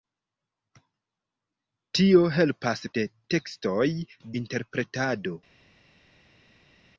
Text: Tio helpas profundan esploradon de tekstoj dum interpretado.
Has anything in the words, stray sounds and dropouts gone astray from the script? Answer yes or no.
yes